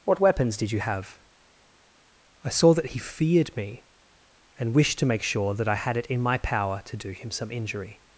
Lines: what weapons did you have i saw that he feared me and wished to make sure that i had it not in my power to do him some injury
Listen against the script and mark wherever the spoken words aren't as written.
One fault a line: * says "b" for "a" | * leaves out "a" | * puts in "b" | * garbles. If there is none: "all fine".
* leaves out "not"